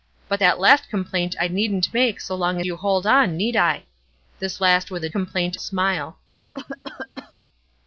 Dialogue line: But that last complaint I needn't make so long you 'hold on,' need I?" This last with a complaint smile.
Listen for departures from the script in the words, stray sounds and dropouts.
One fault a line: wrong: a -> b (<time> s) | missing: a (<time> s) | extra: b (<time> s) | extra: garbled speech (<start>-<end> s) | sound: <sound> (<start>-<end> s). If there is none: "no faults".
sound: cough (6.5-7.3 s)